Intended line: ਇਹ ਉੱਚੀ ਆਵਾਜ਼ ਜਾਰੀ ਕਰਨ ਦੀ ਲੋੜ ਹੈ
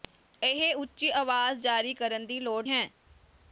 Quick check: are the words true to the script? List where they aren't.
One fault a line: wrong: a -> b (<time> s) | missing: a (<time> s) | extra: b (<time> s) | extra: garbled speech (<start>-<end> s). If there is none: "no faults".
no faults